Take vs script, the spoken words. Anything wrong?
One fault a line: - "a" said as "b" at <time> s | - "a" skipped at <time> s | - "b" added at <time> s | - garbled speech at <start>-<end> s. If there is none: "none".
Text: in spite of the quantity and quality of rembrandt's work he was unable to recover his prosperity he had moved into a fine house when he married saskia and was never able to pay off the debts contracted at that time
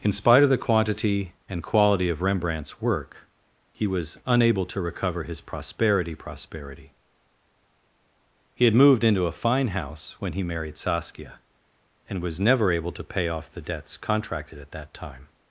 - "prosperity" added at 6.2 s